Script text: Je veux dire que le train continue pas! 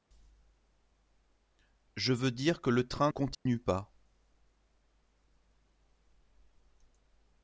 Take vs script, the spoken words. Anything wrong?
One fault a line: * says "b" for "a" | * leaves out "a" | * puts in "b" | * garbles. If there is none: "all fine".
all fine